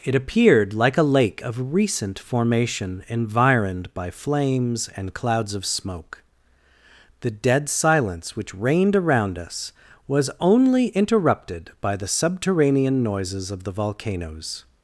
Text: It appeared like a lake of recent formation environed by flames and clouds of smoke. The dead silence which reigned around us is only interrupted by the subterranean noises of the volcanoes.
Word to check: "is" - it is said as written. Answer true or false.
false